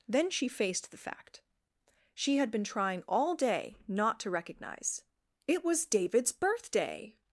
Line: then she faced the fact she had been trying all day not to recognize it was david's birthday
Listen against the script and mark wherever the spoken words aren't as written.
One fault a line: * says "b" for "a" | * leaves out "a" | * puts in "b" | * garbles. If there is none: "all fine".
all fine